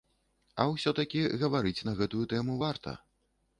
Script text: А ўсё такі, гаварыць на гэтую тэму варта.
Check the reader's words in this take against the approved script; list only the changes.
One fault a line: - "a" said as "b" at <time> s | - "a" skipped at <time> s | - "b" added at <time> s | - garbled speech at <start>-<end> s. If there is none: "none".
none